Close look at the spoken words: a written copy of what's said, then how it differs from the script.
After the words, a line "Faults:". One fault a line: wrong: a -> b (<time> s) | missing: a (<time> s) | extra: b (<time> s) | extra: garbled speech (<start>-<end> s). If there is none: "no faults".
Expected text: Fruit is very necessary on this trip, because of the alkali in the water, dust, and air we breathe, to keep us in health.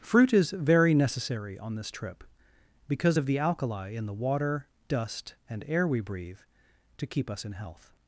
Fruit is very necessary on this trip, because of the alkali in the water, dust, and air we breathe, to keep us in health.
Faults:
no faults